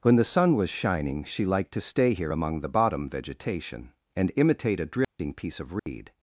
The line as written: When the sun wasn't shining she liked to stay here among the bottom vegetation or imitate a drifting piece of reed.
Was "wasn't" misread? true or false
true